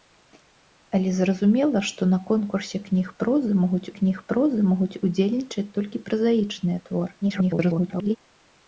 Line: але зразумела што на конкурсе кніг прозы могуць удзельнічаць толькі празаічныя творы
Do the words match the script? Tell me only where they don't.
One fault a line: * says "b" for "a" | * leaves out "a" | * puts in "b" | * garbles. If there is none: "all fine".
* puts in "кніг прозы могуць"
* garbles